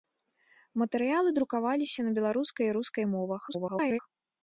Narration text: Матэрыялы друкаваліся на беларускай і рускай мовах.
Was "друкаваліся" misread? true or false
false